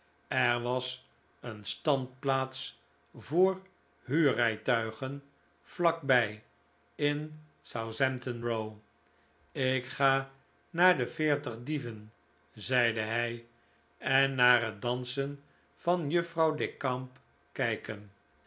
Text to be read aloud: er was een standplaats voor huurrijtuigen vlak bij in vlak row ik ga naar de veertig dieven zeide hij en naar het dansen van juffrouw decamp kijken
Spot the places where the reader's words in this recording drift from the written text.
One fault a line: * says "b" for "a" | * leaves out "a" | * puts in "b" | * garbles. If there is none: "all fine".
* says "southampton" for "vlak"